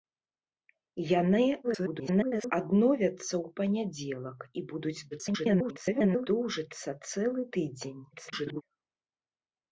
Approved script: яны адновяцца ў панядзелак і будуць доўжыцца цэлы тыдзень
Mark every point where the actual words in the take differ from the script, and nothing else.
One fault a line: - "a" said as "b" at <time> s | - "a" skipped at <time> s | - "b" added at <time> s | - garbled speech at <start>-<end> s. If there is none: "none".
- garbled speech at 1.6-2.5 s
- garbled speech at 5.1-6.3 s
- garbled speech at 8.1-8.6 s